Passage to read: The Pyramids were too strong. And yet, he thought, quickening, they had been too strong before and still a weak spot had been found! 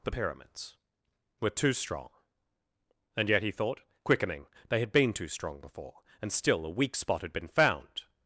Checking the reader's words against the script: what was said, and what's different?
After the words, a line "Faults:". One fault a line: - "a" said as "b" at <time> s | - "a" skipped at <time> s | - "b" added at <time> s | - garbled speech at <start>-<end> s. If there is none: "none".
The Pyramids were too strong. And yet, he thought, quickening, they had been too strong before and still a weak spot had been found!
Faults:
none